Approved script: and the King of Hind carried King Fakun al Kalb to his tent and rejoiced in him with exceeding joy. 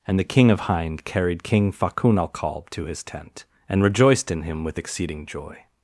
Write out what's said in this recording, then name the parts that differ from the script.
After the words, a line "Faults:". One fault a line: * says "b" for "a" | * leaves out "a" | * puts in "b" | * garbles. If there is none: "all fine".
and the King of Hind carried King Fakun al Kalb to his tent and rejoiced in him with exceeding joy.
Faults:
all fine